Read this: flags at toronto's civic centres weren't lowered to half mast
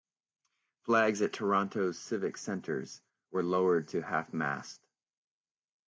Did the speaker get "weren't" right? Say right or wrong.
wrong